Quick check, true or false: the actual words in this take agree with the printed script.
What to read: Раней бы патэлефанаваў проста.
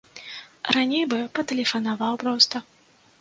true